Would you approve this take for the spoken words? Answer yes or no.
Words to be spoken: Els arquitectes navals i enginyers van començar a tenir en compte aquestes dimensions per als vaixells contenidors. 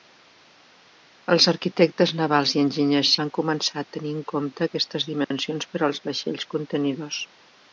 yes